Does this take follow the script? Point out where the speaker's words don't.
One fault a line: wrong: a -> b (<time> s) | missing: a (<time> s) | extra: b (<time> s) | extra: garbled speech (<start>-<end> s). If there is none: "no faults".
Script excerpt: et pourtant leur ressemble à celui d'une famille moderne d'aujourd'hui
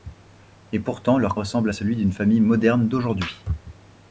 no faults